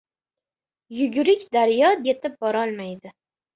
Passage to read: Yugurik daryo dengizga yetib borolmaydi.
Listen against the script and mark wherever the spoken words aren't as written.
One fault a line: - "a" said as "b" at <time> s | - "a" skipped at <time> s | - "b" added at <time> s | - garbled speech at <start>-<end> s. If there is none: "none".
- "dengizga" skipped at 1.9 s